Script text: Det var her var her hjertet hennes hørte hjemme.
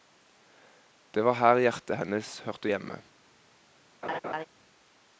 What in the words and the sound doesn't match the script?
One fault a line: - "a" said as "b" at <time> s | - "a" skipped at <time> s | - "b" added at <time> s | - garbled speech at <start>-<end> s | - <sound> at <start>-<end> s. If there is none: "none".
- "var her" skipped at 1.6 s
- laugh at 4.0-4.5 s